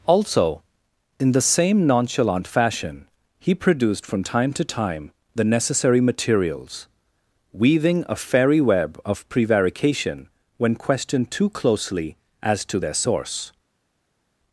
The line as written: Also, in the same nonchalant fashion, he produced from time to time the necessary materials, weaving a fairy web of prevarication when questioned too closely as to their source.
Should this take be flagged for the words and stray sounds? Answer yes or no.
no